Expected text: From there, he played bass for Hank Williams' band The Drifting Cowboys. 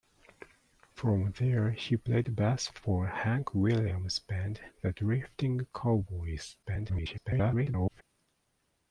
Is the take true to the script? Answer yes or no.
no